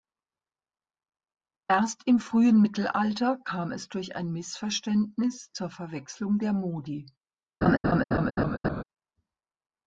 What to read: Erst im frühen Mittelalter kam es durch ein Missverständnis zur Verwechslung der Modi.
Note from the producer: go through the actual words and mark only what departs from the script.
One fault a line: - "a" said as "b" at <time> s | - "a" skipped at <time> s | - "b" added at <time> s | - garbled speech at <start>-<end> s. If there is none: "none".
none